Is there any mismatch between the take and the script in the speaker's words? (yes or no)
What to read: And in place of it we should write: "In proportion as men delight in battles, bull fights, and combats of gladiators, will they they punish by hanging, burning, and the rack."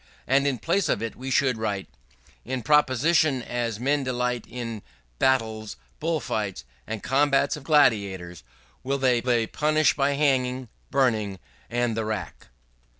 no